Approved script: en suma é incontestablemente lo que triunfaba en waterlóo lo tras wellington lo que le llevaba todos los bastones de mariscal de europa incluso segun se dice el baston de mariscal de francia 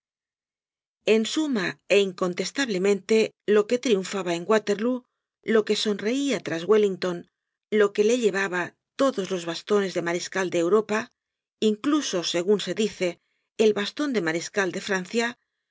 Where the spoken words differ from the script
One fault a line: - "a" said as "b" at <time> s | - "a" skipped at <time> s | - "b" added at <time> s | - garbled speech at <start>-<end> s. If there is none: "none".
- "que sonreia" added at 5.7 s